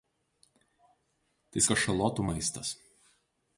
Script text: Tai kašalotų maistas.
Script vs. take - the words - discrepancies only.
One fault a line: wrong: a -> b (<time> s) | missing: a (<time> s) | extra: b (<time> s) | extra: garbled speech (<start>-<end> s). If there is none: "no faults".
no faults